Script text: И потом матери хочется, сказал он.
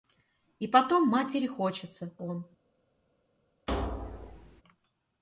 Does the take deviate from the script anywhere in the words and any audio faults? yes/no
yes